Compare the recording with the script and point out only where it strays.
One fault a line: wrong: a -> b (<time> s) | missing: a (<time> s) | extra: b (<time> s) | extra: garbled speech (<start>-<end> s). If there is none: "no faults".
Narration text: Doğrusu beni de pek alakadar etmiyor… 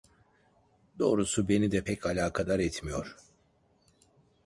no faults